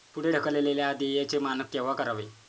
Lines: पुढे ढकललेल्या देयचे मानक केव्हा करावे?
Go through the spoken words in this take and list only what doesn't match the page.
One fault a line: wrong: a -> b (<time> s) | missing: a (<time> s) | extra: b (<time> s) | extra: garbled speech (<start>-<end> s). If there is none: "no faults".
no faults